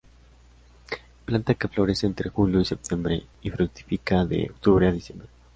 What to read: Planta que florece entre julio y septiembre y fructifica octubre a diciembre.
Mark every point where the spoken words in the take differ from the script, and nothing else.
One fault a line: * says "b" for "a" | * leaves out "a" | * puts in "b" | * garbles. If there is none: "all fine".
* puts in "de"